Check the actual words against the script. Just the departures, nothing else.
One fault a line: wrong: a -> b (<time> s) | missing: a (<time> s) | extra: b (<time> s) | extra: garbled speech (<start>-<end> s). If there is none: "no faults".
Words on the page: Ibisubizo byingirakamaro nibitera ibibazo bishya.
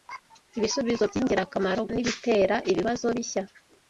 no faults